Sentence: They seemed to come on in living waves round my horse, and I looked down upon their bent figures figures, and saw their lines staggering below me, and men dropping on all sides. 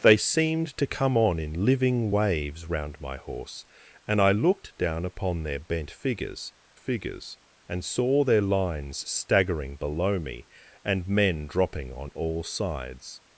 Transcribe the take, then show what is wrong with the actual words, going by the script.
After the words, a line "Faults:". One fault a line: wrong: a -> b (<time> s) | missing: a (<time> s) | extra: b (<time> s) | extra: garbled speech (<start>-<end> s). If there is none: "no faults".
They seemed to come on in living waves round my horse, and I looked down upon their bent figures figures, and saw their lines staggering below me, and men dropping on all sides.
Faults:
no faults